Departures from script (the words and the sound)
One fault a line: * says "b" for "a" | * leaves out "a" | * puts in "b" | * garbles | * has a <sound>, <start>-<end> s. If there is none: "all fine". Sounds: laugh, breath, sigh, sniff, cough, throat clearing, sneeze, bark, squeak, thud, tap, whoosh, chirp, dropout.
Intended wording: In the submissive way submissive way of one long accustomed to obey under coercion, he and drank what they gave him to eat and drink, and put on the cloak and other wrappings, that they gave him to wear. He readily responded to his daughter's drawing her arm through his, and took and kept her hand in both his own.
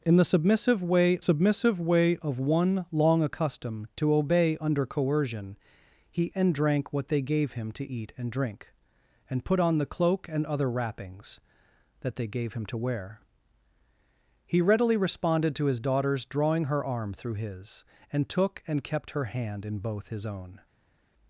all fine